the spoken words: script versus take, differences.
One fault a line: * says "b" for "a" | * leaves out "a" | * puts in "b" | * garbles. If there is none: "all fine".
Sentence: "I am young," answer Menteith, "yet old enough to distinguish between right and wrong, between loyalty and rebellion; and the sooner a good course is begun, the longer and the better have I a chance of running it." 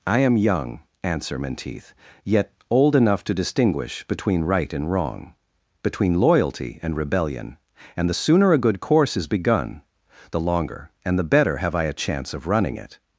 all fine